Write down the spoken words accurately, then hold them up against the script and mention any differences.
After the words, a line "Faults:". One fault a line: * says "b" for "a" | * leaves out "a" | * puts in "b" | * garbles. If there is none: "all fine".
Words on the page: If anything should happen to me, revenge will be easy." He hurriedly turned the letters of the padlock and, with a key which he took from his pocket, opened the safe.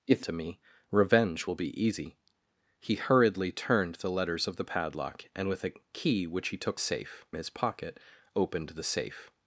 If to me, revenge will be easy." He hurriedly turned the letters of the padlock and, with a key which he took safe his pocket, opened the safe.
Faults:
* leaves out "anything should happen"
* says "safe" for "from"